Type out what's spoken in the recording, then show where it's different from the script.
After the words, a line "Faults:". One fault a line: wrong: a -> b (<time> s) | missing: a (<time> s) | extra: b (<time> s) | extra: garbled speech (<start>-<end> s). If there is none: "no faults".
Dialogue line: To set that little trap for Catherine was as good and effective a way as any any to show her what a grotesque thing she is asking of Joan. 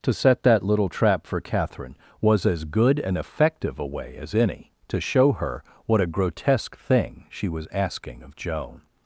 To set that little trap for Catherine was as good and effective a way as any to show her what a grotesque thing she was asking of Joan.
Faults:
missing: any (4.7 s)
wrong: is -> was (7.5 s)